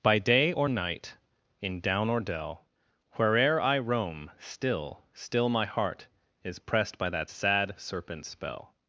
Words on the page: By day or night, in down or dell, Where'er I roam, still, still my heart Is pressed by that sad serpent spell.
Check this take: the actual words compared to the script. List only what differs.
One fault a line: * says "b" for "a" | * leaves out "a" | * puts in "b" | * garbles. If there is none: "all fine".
all fine